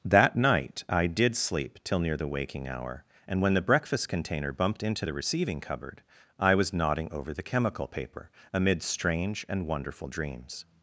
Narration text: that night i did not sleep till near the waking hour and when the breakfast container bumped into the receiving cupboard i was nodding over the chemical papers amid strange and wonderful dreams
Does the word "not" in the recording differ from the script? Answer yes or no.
yes